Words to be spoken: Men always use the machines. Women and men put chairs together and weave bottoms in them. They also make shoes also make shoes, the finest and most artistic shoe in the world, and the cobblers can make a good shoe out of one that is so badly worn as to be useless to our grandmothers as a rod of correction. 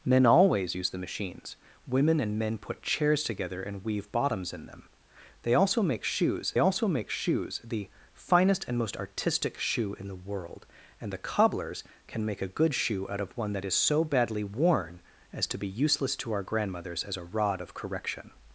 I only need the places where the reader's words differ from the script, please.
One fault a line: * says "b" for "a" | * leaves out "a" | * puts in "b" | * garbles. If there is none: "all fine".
all fine